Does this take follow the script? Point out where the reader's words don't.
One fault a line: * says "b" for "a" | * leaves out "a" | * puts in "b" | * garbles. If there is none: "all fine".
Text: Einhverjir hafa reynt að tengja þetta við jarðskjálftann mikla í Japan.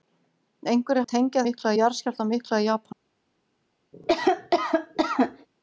* leaves out "hafa reynt"
* says "mikla" for "þetta"